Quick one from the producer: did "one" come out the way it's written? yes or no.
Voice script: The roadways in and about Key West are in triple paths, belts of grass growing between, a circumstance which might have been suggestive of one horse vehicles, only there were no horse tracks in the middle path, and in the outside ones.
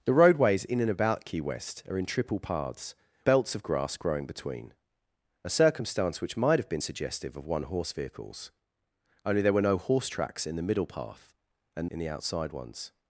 yes